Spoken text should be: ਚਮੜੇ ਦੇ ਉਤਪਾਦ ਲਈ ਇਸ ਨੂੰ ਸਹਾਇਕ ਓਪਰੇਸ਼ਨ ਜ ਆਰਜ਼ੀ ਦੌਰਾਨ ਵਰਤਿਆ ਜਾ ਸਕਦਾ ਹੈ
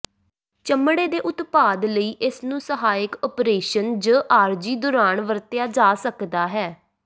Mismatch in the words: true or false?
false